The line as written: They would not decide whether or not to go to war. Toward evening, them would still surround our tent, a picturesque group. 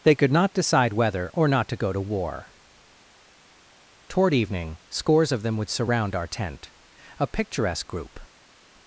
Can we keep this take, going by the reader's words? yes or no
no